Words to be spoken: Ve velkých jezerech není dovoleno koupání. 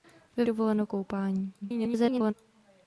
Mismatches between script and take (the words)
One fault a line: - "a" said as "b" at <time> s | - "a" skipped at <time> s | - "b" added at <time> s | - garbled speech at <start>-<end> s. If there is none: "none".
- "velkých jezerech není" skipped at 0.5 s
- garbled speech at 1.6-2.3 s